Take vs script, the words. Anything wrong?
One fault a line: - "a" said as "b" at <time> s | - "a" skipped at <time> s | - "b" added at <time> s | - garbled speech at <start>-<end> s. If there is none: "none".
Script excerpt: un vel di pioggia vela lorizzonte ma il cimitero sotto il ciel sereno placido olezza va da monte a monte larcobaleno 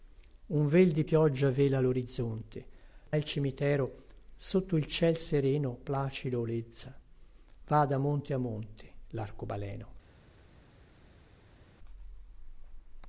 - "ma" skipped at 2.7 s